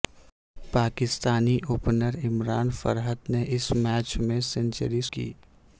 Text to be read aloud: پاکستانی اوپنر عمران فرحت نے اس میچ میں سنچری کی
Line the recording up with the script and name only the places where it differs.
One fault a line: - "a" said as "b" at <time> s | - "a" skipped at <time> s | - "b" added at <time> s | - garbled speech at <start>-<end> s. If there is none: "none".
none